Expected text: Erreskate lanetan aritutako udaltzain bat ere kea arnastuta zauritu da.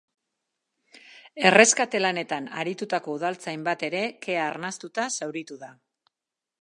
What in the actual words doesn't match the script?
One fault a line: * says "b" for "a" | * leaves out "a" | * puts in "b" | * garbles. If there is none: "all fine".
all fine